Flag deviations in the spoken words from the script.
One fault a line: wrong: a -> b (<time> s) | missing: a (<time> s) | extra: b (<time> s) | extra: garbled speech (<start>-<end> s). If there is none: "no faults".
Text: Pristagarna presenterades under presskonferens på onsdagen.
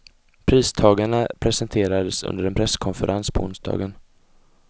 extra: en (2.4 s)